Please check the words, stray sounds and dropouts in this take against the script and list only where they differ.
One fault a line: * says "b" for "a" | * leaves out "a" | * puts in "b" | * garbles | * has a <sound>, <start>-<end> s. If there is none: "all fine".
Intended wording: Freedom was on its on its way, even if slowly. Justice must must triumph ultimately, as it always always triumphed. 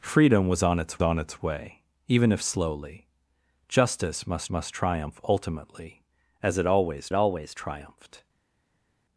all fine